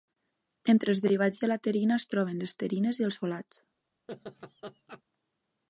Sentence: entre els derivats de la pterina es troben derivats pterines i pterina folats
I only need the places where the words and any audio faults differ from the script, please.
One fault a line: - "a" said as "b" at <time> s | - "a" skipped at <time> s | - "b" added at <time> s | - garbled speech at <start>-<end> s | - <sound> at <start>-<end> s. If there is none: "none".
- "derivats" said as "les" at 2.5 s
- "pterina" said as "els" at 3.1 s
- laugh at 4.1-5.0 s